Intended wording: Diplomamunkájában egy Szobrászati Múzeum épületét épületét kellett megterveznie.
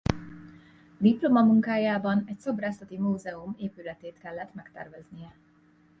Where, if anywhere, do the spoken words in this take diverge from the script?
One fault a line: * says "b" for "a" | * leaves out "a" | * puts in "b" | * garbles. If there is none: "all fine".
* leaves out "épületét"